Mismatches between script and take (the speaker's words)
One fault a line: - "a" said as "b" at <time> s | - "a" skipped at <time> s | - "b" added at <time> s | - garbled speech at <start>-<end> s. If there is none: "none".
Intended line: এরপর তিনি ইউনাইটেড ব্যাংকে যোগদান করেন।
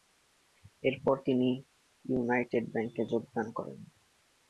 none